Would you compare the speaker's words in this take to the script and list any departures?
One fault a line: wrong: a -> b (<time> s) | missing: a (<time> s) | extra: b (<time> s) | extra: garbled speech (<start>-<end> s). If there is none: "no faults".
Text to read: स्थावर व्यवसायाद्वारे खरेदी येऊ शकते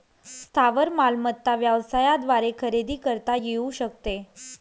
extra: मालमत्ता (0.9 s)
extra: करता (3.0 s)